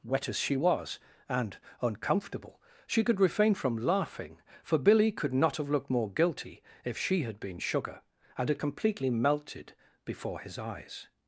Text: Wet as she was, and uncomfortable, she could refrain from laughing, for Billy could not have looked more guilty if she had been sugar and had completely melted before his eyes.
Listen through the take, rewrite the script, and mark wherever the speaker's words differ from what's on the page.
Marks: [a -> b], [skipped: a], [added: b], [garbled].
Wet as she was, and uncomfortable, she could refrain from laughing, for Billy could not have looked more guilty if she had been sugar and had completely melted before his eyes.